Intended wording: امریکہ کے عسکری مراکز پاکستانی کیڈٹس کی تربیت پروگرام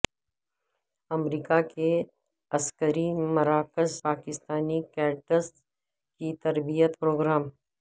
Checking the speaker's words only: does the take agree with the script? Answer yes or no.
yes